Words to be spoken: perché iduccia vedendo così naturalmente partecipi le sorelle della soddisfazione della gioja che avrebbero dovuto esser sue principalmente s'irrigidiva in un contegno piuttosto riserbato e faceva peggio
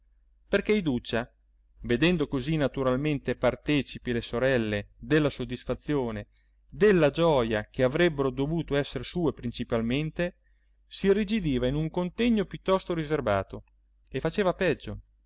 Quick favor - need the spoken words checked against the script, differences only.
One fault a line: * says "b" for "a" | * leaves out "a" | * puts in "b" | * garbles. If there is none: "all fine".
all fine